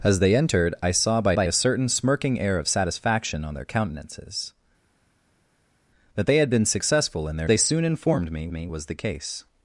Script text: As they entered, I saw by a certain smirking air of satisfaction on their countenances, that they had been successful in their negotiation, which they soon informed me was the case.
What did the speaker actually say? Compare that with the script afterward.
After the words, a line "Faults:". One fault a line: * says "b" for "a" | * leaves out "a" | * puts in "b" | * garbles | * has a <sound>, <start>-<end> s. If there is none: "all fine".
As they entered, I saw by by a certain smirking air of satisfaction on their countenances, that they had been successful in their they soon informed me me was the case.
Faults:
* puts in "by"
* leaves out "negotiation which"
* puts in "me"